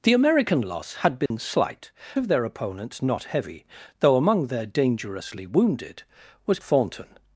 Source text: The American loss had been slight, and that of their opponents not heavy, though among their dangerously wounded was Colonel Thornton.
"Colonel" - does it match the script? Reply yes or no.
no